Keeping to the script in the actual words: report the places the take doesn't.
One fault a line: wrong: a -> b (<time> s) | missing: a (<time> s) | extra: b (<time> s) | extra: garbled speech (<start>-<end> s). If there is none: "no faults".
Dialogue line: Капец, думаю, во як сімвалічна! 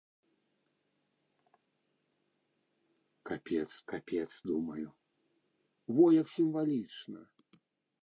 extra: капец (3.9 s)